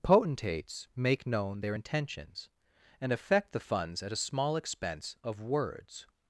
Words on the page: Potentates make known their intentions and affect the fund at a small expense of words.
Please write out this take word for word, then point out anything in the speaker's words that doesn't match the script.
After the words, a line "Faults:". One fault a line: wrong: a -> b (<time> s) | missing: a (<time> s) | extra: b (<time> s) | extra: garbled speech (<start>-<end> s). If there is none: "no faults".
Potentates make known their intentions and affect the funds at a small expense of words.
Faults:
wrong: fund -> funds (3.7 s)